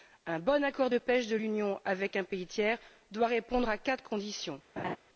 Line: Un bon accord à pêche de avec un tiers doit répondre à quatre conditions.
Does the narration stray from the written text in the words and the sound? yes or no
yes